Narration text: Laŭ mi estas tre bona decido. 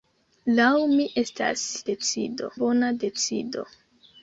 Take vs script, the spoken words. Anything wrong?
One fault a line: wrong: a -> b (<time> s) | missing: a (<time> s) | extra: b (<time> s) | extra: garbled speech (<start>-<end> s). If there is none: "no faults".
wrong: tre -> decido (1.9 s)